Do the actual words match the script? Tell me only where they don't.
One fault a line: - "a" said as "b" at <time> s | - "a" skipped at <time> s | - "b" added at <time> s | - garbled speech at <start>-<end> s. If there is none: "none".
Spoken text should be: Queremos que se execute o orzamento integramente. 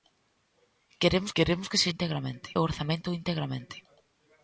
- "queremos" added at 1.4 s
- "execute" said as "integramente" at 1.9 s